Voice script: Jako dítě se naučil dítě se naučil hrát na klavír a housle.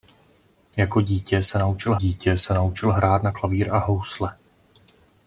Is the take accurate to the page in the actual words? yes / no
yes